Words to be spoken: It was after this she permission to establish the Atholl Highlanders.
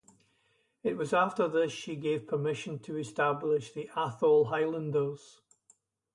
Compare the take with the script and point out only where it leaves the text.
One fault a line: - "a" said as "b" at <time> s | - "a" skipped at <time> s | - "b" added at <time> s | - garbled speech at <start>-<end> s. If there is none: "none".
- "gave" added at 1.9 s